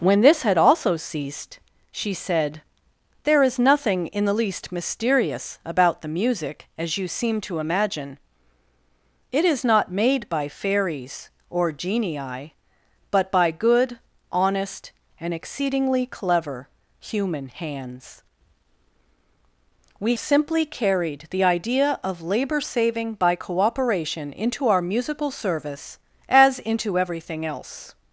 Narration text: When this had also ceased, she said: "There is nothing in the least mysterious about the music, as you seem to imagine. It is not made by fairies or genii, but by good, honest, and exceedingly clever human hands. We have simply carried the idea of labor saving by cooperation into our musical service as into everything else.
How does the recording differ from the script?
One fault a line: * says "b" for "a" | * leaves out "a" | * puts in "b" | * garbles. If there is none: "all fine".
* leaves out "have"